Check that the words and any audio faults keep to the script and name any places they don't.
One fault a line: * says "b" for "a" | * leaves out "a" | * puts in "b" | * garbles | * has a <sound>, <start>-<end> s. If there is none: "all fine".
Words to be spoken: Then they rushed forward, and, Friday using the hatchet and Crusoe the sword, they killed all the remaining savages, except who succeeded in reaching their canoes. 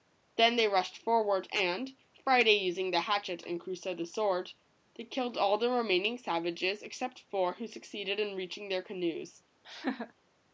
* puts in "four"
* has a laugh, 9.6-10.1 s